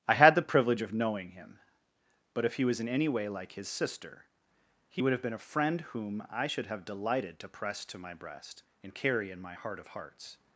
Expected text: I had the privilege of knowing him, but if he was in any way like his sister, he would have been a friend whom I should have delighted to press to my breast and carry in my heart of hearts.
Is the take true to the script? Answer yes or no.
yes